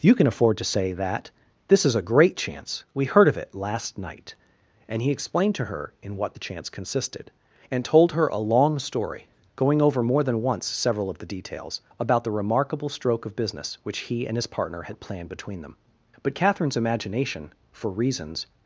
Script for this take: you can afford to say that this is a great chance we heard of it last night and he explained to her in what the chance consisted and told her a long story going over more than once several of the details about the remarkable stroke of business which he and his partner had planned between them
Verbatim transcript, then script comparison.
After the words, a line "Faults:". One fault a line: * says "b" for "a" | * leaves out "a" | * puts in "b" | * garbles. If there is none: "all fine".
you can afford to say that this is a great chance we heard of it last night and he explained to her in what the chance consisted and told her a long story going over more than once several of the details about the remarkable stroke of business which he and his partner had planned between them but catherine's imagination for reasons
Faults:
* puts in "but catherine's imagination for reasons"